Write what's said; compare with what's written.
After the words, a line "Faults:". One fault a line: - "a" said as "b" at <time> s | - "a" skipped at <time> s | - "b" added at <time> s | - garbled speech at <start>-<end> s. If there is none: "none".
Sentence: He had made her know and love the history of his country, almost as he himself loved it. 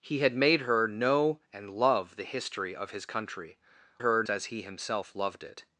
He had made her know and love the history of his country, her as he himself loved it.
Faults:
- "almost" said as "her" at 4.0 s